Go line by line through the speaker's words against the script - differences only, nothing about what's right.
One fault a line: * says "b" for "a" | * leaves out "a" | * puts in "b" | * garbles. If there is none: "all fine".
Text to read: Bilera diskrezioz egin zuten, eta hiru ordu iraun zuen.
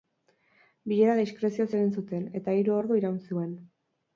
all fine